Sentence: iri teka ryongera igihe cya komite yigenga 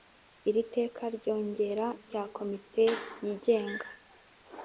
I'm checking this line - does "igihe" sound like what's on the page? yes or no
no